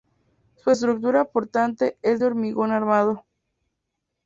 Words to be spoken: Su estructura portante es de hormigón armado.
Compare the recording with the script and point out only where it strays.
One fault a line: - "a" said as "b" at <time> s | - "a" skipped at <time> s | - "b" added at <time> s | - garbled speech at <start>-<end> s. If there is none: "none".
none